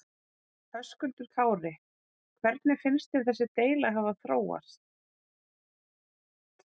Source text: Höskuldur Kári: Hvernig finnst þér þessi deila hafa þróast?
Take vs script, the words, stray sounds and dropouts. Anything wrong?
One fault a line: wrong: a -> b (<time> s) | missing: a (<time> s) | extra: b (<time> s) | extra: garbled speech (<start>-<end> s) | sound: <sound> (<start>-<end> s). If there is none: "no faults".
no faults